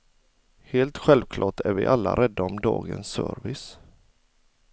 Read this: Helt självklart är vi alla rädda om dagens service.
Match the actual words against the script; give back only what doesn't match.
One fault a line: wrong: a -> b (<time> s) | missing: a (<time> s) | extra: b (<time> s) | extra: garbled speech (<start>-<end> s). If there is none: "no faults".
no faults